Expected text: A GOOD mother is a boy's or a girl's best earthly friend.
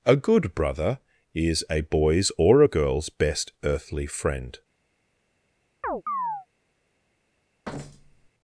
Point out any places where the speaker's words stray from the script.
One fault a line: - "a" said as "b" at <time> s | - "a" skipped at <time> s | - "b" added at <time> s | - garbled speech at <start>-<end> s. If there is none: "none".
- "mother" said as "brother" at 0.6 s